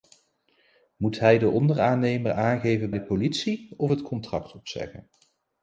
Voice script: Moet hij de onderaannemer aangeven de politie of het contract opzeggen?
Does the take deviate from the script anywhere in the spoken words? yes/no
no